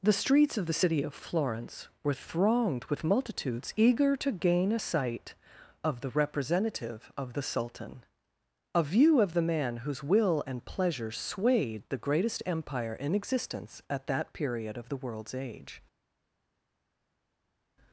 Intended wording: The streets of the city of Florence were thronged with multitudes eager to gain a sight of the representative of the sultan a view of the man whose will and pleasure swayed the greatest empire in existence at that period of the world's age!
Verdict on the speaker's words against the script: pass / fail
pass